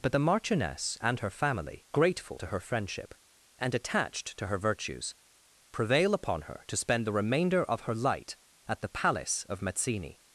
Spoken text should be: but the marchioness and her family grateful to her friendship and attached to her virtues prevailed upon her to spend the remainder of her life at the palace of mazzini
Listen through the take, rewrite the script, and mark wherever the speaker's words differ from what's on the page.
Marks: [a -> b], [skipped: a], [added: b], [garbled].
but the marchioness and her family grateful to her friendship and attached to her virtues [prevailed -> prevail] upon her to spend the remainder of her [life -> light] at the palace of mazzini